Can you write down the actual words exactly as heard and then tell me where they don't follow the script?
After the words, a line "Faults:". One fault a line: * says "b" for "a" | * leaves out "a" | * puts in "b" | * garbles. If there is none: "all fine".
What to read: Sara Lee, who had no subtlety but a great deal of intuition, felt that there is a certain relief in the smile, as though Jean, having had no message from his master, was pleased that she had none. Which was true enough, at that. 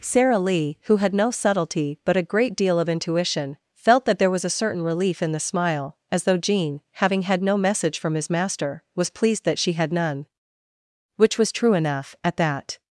Sara Lee, who had no subtlety but a great deal of intuition, felt that there was a certain relief in the smile, as though Jean, having had no message from his master, was pleased that she had none. Which was true enough, at that.
Faults:
* says "was" for "is"